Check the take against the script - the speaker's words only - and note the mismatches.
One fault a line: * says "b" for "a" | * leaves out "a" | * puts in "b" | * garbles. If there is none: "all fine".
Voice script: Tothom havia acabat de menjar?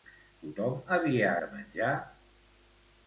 * leaves out "acabat"